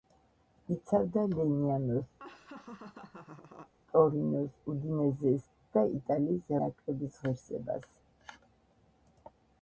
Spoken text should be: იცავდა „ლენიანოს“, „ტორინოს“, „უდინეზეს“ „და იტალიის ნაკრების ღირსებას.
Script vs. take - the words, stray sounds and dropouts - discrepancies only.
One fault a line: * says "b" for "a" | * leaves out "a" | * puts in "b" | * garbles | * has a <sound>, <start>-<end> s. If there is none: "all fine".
* has a laugh, 2.2-3.7 s